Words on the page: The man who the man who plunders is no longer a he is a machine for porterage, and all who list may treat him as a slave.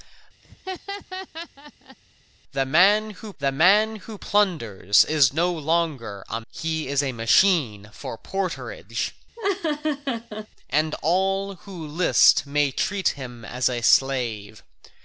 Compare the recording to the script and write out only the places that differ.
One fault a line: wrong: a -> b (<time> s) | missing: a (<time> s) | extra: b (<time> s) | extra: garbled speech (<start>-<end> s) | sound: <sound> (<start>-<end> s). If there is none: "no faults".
sound: laugh (0.4-2.0 s)
sound: laugh (9.4-10.5 s)